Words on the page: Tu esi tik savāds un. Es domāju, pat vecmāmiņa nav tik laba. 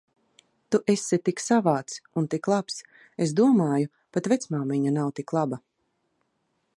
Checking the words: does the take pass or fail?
fail